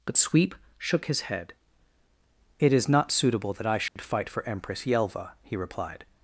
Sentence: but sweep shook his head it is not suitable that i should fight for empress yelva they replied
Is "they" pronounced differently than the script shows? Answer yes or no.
yes